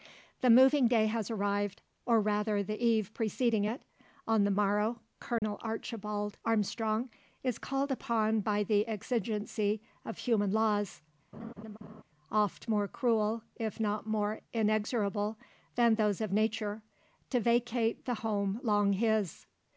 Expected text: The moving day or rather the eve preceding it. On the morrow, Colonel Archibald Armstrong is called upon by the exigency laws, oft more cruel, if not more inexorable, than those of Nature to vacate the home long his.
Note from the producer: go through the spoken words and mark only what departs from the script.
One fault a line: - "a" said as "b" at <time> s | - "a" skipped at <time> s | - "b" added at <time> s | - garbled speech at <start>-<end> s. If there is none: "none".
- "has arrived" added at 1.1 s
- "of human" added at 10.1 s